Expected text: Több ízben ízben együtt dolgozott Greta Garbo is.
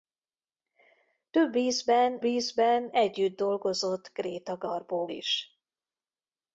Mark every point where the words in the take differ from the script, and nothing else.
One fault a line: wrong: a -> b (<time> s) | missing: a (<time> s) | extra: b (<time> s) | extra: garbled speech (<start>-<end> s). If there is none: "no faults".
no faults